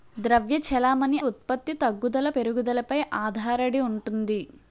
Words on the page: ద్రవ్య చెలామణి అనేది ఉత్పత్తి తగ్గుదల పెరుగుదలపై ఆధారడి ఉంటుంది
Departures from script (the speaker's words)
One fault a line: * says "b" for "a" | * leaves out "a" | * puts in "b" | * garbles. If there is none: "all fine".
* leaves out "అనేది"